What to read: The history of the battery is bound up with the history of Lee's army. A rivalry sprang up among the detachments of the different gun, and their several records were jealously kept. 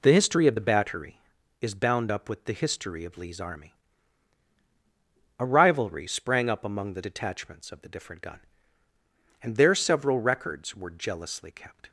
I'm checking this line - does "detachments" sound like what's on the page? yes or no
yes